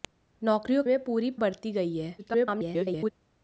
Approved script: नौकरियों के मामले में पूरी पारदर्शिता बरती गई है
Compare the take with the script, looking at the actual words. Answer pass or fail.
fail